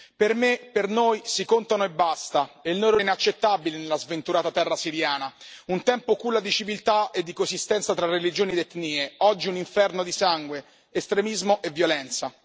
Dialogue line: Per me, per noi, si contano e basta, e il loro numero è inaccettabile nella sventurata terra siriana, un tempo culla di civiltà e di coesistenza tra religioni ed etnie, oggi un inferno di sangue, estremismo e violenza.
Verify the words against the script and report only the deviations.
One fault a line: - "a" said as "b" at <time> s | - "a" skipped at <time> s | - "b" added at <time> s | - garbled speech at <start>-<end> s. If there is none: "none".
- "numero" skipped at 3.0 s